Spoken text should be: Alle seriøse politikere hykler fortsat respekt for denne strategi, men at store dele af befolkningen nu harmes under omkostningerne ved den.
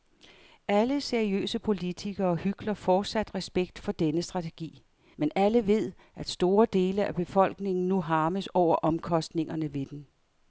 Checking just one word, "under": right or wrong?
wrong